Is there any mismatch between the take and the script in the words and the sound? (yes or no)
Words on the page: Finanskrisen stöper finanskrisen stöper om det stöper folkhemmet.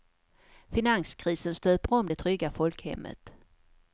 yes